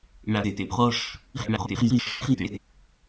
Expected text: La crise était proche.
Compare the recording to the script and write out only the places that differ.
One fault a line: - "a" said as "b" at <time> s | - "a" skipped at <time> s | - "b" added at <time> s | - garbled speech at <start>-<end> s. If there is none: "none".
- "crise" skipped at 0.4 s
- garbled speech at 1.3-2.6 s